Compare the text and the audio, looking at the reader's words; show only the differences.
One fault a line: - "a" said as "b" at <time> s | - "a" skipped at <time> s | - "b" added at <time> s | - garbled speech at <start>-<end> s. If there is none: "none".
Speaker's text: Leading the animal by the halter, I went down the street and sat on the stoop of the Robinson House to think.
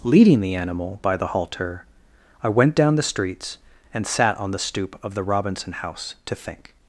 - "street" said as "streets" at 3.0 s